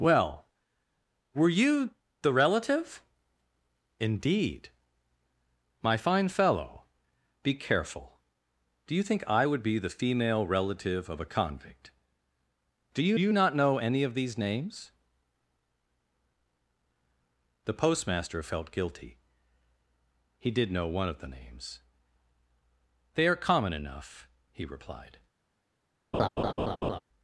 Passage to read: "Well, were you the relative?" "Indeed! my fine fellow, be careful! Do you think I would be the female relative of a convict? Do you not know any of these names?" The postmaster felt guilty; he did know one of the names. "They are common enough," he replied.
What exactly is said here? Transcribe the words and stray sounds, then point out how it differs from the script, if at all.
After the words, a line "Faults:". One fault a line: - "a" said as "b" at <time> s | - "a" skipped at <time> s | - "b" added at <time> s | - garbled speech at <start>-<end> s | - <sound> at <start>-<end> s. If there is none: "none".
"Well, were you the relative?" "Indeed! my fine fellow, be careful! Do you think I would be the female relative of a convict? Do you you not know any of these names?" The postmaster felt guilty; he did know one of the names. "They are common enough," he replied.
Faults:
- "you" added at 13.2 s
- laugh at 26.1-27.0 s